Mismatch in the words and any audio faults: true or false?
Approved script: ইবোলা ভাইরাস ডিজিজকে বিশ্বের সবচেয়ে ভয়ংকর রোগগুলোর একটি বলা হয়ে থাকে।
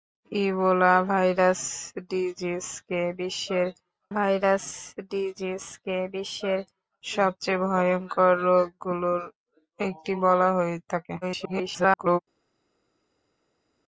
true